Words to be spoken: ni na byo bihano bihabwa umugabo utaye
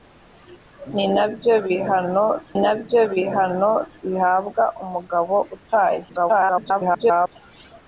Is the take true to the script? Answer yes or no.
no